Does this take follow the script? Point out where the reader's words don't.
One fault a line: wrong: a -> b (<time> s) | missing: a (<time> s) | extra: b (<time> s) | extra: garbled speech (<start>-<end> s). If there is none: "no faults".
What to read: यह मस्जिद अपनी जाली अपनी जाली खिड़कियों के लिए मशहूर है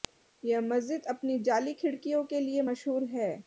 missing: अपनी जाली (1.7 s)